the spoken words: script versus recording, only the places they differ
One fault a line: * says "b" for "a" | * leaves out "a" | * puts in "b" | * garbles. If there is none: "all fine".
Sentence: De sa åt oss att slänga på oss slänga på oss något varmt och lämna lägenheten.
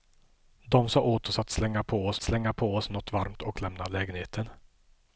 all fine